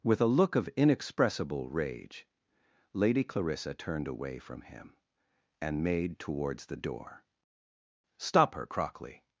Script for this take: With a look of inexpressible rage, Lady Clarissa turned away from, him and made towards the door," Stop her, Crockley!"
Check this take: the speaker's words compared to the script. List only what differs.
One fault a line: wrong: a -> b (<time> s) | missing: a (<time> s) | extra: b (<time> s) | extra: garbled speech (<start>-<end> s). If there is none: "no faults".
no faults